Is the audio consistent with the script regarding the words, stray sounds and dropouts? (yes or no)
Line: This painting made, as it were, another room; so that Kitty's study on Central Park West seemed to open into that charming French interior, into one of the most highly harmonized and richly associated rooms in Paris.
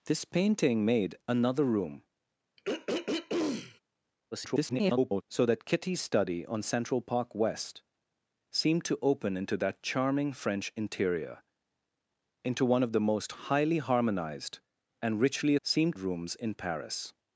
no